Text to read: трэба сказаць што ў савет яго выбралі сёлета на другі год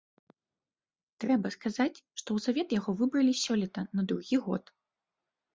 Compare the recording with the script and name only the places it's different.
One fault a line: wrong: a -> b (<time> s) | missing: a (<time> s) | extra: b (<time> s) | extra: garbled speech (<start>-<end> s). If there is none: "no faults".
no faults